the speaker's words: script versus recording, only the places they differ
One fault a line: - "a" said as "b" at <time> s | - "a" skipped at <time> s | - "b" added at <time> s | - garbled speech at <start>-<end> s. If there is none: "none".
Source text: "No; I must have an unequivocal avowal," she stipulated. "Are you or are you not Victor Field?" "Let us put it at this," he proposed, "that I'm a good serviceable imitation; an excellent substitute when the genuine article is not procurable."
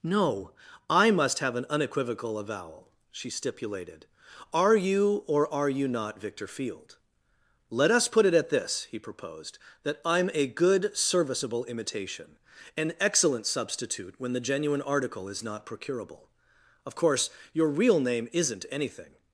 - "Of course your real name isn't anything" added at 16.9 s